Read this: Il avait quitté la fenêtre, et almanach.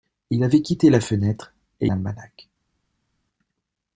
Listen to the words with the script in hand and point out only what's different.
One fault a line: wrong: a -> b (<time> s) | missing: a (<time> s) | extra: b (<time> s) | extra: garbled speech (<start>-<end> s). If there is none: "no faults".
no faults